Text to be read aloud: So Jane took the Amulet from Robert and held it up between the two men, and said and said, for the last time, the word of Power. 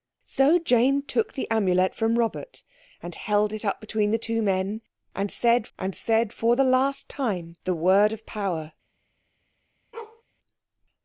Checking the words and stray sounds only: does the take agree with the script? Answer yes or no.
no